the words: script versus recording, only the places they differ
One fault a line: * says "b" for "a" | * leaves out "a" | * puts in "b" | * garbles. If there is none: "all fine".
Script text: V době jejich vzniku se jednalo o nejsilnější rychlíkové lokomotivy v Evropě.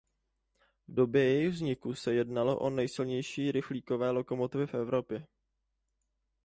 all fine